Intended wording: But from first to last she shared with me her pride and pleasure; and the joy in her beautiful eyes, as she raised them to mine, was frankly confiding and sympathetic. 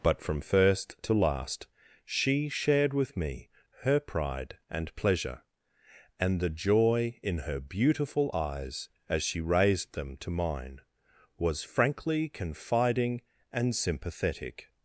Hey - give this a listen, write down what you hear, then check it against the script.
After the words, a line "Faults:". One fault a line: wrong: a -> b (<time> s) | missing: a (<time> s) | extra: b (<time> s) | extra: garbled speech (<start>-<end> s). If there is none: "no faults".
But from first to last she shared with me her pride and pleasure; and the joy in her beautiful eyes, as she raised them to mine, was frankly confiding and sympathetic.
Faults:
no faults